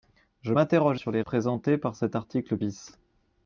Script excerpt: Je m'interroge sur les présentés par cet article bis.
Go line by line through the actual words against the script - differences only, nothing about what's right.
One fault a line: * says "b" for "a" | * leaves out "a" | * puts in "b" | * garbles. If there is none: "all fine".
all fine